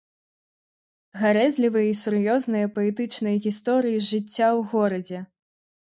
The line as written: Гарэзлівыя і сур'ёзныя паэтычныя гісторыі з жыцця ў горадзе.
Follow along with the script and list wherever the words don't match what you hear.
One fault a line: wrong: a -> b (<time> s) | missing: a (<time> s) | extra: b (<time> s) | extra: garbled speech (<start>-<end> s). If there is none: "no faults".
no faults